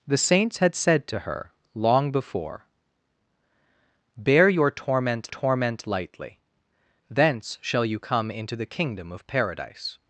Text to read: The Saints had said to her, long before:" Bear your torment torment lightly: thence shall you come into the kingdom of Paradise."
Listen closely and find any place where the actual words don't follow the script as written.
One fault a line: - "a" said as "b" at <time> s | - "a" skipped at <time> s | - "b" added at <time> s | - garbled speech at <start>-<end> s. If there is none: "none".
none